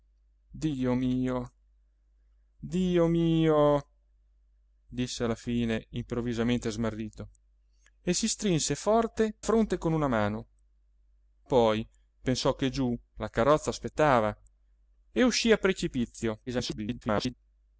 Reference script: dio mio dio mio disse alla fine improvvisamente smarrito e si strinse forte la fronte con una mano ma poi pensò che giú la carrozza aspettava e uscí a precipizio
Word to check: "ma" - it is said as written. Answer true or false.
false